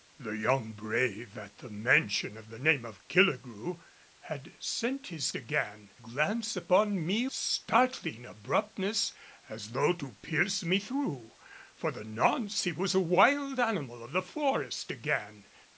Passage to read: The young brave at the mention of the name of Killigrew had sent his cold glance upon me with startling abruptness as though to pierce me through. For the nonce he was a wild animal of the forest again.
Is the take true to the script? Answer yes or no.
no